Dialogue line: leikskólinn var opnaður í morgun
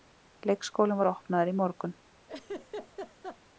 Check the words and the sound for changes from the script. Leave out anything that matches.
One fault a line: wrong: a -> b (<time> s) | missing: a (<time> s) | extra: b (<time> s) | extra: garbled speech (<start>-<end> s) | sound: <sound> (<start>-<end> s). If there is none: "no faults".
sound: laugh (2.3-3.4 s)